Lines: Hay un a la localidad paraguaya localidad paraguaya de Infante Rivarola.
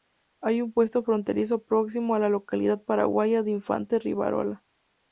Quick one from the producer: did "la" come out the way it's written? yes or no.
yes